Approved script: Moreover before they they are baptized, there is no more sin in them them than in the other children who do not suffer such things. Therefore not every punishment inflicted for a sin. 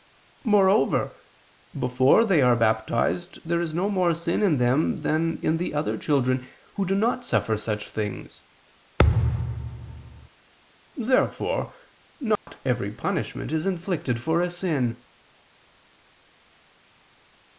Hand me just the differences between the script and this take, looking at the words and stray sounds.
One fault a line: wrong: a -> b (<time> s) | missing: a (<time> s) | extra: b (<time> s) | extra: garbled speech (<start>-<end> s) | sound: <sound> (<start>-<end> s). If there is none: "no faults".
missing: they (2.4 s)
missing: them (5.0 s)
sound: thud (9.0-10.3 s)
sound: dropout (12.4-12.5 s)
extra: is (13.5 s)